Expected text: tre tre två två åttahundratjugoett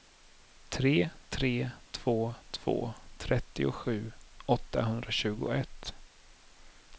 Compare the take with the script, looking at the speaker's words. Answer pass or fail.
fail